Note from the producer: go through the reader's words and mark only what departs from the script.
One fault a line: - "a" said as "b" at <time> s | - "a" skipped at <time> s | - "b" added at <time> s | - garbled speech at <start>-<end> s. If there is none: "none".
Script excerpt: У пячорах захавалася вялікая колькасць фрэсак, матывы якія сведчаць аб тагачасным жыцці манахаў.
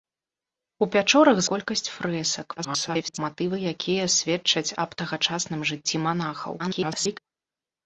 - "захавалася вялікая" skipped at 1.4 s
- garbled speech at 2.6-3.2 s
- garbled speech at 6.6-7.2 s